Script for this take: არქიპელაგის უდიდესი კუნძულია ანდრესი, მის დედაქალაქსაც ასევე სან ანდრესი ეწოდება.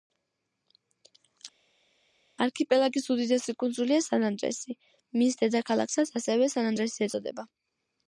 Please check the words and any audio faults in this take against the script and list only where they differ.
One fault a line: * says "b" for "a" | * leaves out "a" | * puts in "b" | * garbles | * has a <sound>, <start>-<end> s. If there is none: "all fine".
* puts in "სან"